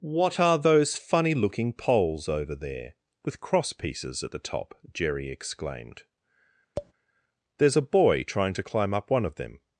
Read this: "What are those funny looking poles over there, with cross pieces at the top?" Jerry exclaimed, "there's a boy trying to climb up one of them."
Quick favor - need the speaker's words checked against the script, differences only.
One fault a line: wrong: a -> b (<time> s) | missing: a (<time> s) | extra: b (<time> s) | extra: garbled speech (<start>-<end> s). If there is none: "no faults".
no faults